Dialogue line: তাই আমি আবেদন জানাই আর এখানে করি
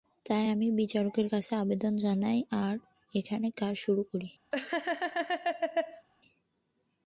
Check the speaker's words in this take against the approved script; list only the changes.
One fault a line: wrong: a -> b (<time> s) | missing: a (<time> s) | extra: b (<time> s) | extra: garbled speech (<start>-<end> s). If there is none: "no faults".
extra: বিচারকের কাছে (0.7 s)
extra: কাজ শুরু (3.5 s)